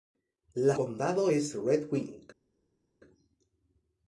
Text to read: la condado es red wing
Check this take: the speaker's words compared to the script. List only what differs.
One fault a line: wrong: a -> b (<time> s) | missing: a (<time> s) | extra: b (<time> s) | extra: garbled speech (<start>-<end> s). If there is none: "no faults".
no faults